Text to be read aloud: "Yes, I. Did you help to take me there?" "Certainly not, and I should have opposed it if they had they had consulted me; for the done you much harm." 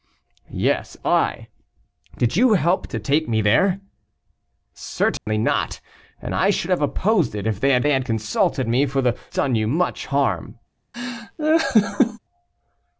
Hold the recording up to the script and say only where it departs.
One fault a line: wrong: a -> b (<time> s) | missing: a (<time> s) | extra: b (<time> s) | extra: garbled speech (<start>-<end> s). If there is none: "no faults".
no faults